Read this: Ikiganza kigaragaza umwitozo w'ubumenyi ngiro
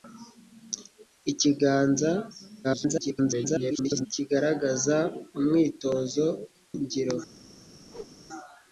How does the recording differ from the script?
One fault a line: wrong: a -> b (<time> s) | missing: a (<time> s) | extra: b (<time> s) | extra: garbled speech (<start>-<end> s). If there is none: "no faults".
extra: garbled speech (2.6-4.1 s)
missing: w'ubumenyi (6.3 s)